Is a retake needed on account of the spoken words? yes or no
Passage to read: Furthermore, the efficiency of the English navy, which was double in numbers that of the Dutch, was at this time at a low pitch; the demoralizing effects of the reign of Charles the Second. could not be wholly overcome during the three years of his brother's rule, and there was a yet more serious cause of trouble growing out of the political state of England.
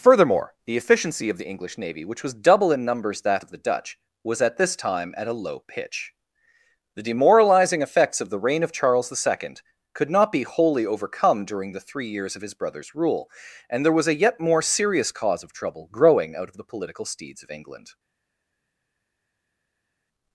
yes